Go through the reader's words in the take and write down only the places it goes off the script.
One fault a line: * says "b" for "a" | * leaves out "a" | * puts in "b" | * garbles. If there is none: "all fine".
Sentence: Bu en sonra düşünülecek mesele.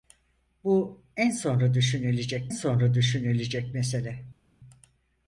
* puts in "sonra düşünülecek"